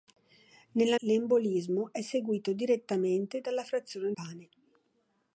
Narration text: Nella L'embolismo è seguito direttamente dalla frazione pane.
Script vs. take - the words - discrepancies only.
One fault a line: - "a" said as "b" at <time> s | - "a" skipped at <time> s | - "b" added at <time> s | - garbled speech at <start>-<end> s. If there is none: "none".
none